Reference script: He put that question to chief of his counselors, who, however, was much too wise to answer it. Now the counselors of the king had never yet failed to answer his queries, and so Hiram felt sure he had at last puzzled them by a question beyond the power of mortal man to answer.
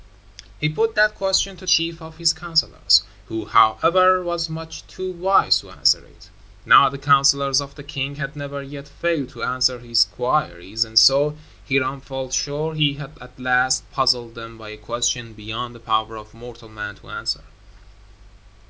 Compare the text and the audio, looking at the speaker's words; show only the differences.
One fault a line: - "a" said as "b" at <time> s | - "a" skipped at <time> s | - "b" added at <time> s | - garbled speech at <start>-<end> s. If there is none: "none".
none